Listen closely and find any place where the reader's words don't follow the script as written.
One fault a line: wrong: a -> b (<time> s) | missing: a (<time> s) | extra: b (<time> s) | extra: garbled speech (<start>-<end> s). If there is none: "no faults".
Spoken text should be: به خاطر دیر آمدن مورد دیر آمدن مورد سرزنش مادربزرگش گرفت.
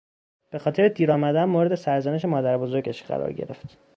missing: دیر آمدن مورد (1.7 s)
extra: قرار (3.0 s)